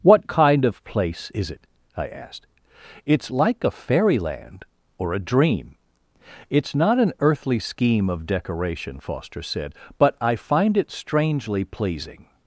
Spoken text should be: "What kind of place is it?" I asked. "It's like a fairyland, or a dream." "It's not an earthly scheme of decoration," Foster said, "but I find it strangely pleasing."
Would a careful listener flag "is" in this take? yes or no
no